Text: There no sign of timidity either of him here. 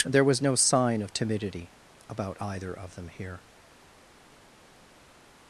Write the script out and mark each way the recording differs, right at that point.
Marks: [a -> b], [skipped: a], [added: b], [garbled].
There [added: was] no sign of timidity [added: about] either of [him -> them] here.